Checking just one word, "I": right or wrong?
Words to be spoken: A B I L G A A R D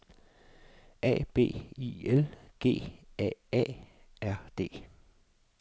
right